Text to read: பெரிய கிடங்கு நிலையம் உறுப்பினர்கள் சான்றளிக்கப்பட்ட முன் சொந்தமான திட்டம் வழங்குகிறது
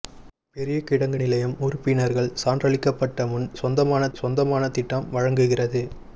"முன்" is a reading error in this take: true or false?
false